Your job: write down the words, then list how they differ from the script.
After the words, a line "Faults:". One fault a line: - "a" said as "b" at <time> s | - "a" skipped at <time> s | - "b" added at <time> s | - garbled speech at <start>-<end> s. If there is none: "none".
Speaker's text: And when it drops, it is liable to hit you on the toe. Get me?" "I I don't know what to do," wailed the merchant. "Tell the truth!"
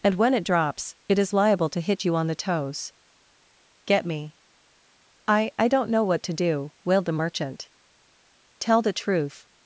And when it drops, it is liable to hit you on the toes. Get me?" "I I don't know what to do," wailed the merchant. "Tell the truth!"
Faults:
- "toe" said as "toes" at 2.4 s